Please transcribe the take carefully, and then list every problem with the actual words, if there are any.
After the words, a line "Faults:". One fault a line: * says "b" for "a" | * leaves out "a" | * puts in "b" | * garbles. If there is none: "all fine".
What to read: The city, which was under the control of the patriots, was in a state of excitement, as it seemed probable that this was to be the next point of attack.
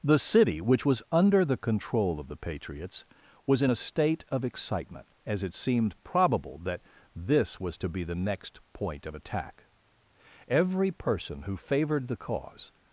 The city, which was under the control of the patriots, was in a state of excitement, as it seemed probable that this was to be the next point of attack. Every person who favored the cause
Faults:
* puts in "Every person who favored the cause"